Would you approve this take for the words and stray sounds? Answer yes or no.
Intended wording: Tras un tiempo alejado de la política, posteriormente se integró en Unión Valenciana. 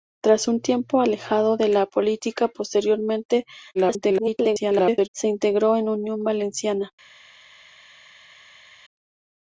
no